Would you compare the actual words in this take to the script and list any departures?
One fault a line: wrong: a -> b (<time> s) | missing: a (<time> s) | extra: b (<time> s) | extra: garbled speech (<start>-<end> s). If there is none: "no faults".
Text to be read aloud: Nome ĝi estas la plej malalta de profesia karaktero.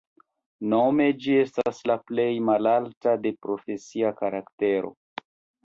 no faults